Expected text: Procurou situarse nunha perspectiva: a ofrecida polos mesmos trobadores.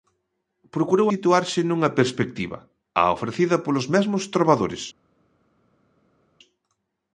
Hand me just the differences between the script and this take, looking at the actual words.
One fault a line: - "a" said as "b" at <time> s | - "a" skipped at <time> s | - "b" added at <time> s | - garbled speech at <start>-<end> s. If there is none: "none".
none